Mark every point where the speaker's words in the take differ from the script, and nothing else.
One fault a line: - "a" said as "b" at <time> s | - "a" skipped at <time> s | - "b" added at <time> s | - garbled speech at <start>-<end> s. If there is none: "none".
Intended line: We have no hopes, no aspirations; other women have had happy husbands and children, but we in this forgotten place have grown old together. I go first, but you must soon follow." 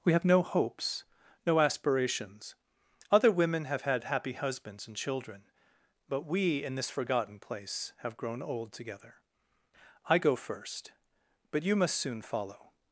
none